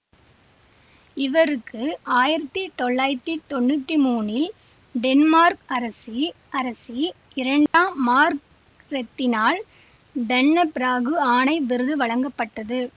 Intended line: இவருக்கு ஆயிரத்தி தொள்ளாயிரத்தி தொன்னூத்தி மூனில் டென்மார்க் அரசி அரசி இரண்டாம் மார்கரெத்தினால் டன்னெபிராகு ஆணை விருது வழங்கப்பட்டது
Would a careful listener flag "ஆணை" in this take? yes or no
no